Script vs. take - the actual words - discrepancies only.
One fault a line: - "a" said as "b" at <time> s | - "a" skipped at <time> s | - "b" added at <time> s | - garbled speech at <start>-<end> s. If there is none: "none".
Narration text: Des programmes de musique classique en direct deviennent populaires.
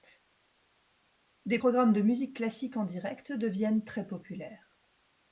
- "très" added at 3.8 s